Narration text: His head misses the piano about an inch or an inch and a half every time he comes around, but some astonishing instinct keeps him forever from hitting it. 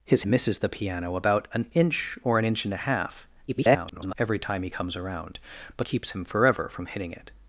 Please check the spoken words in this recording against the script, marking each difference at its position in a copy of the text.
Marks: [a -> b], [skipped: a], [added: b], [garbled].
His [skipped: head] misses the piano about an inch or an inch and a half [garbled] every time he comes around, but [skipped: some astonishing instinct] keeps him forever from hitting it.